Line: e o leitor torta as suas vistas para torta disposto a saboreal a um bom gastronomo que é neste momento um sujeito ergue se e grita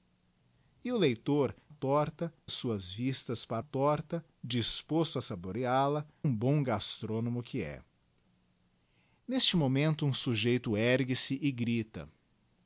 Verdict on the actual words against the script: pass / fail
pass